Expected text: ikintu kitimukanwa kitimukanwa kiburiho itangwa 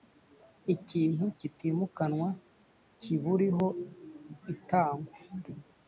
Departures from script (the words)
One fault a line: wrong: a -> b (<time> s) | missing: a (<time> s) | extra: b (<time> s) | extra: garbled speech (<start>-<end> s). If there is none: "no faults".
missing: kitimukanwa (2.3 s)